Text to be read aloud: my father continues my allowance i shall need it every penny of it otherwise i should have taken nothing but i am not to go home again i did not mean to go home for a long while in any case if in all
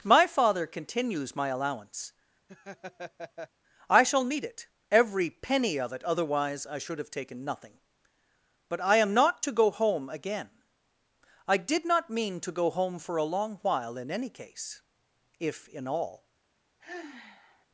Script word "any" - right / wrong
right